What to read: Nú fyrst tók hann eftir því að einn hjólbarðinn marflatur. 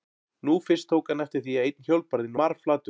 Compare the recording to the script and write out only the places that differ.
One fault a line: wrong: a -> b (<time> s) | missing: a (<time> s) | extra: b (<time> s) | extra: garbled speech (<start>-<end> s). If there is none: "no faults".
no faults